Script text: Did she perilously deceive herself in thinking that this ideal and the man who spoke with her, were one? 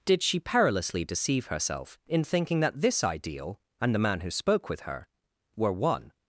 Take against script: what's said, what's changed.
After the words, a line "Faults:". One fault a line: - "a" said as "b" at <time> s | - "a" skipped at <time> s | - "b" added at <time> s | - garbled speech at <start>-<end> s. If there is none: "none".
Did she perilously deceive herself in thinking that this ideal and the man who spoke with her, were one?
Faults:
none